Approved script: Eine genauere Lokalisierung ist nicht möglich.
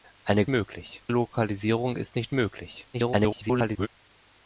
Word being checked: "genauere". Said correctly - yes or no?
no